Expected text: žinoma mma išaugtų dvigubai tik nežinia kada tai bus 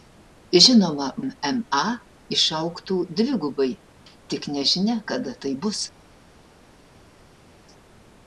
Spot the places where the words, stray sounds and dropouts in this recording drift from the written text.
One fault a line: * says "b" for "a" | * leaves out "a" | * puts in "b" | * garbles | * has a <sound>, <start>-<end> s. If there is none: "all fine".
all fine